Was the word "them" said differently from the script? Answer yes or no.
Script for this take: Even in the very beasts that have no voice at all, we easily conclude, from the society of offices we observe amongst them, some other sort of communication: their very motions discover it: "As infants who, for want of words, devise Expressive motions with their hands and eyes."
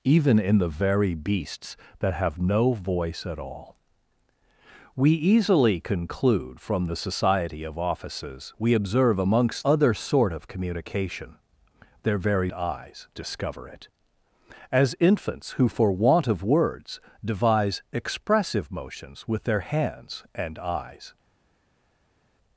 yes